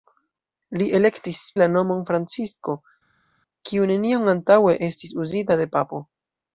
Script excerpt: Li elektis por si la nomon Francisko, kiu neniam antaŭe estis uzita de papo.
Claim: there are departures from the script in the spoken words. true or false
true